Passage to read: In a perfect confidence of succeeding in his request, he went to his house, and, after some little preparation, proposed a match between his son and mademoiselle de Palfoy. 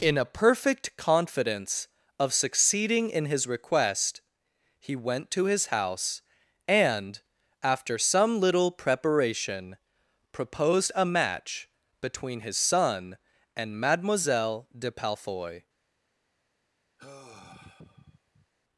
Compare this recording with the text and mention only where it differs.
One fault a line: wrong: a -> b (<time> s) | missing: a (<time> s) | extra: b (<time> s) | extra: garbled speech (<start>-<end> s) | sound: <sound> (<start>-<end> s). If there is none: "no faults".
sound: sigh (17.0-18.5 s)